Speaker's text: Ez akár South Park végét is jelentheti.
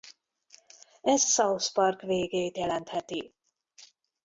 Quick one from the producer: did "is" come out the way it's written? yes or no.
no